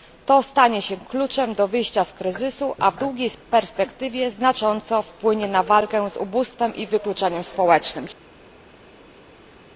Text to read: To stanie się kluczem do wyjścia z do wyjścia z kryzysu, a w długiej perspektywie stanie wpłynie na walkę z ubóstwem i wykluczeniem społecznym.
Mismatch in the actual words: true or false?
true